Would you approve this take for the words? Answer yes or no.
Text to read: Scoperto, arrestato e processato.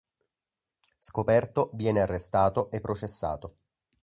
no